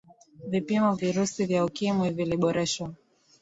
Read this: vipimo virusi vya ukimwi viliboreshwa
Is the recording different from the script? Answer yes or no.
no